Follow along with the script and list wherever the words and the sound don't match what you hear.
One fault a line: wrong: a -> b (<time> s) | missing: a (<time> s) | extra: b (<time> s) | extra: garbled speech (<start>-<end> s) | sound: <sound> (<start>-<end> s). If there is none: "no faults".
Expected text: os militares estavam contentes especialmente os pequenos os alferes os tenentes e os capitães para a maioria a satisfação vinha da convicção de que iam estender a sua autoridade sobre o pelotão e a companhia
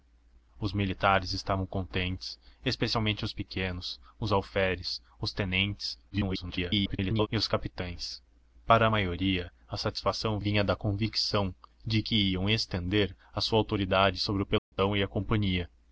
extra: garbled speech (6.1-7.3 s)
sound: dropout (14.6-14.7 s)